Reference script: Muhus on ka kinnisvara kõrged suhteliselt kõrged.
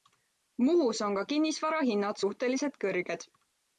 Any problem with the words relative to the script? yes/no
yes